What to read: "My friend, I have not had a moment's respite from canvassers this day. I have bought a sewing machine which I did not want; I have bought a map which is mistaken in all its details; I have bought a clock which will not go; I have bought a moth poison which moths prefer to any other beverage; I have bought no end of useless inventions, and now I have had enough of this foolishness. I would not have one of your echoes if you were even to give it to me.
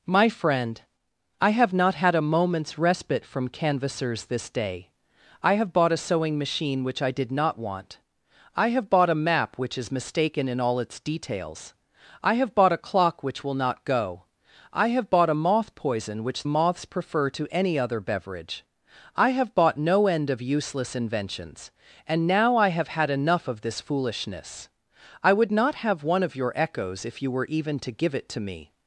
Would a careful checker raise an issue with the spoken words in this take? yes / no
no